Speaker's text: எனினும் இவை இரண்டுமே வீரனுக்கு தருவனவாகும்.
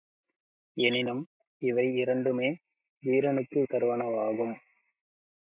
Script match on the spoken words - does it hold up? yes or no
yes